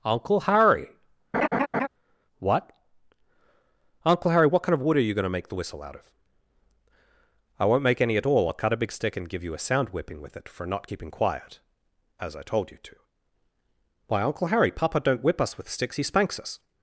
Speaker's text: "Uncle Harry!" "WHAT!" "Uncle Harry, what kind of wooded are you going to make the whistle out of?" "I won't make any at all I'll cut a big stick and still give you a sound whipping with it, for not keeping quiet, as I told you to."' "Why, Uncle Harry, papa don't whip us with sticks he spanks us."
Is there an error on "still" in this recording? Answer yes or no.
yes